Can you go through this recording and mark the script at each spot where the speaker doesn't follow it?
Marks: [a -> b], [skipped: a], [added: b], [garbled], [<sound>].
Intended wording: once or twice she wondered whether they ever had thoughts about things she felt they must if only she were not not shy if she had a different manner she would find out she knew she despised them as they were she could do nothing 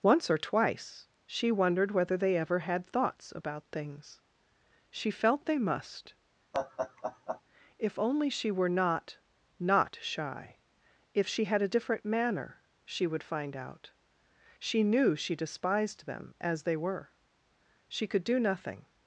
once or twice she wondered whether they ever had thoughts about things she felt they must [laugh] if only she were not not shy if she had a different manner she would find out she knew she despised them as they were she could do nothing